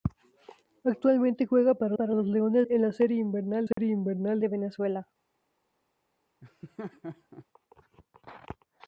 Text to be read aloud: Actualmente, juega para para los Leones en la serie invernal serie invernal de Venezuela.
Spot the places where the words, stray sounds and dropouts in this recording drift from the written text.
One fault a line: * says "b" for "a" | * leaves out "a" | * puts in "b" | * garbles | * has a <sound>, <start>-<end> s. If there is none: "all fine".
* has a dropout, 3.7-3.8 s
* has a laugh, 6.4-7.5 s